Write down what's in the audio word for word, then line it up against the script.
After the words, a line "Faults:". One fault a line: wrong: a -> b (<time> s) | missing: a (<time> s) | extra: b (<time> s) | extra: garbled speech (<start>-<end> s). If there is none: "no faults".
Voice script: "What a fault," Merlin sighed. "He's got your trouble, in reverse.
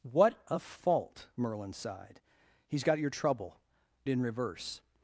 "What a fault," Merlin sighed. "He's got your trouble, in reverse.
Faults:
no faults